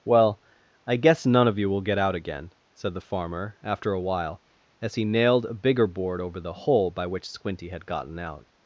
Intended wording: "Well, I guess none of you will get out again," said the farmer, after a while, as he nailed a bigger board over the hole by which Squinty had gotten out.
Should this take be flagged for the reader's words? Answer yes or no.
no